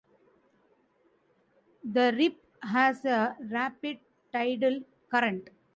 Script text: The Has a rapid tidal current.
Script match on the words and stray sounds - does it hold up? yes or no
no